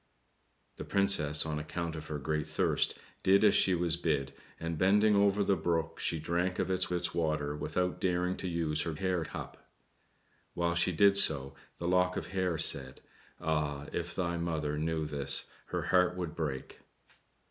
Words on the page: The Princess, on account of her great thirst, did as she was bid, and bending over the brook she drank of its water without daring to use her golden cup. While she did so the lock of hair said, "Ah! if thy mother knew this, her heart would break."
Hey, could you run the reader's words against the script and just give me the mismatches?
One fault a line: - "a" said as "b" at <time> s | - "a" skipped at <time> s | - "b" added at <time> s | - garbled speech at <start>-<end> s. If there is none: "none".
- "its" added at 6.9 s
- "golden" said as "hair" at 8.9 s